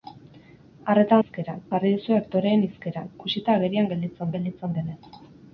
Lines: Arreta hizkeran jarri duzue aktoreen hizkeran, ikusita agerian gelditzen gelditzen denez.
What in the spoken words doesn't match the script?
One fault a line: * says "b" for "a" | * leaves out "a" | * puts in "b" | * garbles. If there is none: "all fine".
all fine